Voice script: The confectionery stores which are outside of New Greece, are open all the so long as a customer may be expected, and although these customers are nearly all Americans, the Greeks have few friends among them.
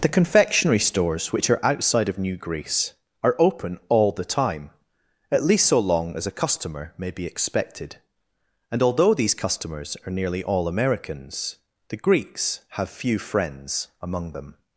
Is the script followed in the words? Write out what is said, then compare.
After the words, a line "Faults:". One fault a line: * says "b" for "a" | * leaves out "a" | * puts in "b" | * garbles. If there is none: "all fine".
The confectionery stores which are outside of New Greece, are open all the time, at least so long as a customer may be expected, and although these customers are nearly all Americans, the Greeks have few friends among them.
Faults:
* puts in "time at least"